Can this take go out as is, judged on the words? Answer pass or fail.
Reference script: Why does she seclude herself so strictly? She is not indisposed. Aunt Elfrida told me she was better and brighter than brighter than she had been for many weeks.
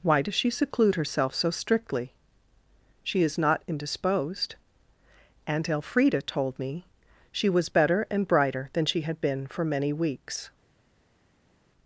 fail